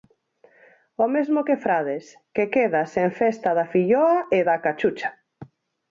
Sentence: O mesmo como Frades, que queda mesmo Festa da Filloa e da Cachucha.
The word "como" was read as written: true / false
false